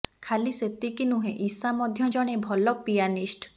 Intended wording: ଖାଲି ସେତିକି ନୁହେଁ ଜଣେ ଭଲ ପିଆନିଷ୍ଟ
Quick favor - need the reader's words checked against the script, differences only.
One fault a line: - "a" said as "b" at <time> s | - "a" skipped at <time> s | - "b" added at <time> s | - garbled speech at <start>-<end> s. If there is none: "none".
- "ଇଶା ମଧ୍ୟ" added at 1.4 s